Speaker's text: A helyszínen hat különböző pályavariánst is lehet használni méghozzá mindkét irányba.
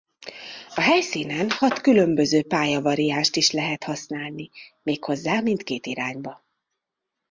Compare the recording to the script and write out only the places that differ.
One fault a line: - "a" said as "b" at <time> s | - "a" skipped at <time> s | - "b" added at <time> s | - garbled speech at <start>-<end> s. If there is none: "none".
none